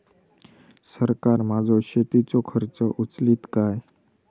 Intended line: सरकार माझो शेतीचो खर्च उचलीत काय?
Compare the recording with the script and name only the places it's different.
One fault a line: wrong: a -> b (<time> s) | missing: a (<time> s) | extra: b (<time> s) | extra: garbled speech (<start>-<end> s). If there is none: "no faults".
no faults